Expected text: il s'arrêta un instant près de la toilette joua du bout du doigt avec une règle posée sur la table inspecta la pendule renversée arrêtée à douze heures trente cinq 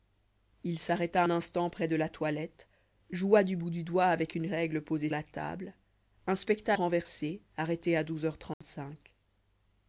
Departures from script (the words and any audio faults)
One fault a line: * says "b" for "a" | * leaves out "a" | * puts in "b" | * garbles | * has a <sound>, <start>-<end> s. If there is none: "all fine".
* leaves out "un"
* leaves out "sur"
* leaves out "la pendule"
* has a dropout, 8.5-8.6 s